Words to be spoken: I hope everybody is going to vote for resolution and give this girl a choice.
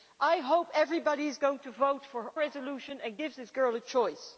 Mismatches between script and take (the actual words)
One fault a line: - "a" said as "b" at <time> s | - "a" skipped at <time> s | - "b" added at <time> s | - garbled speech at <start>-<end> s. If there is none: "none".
none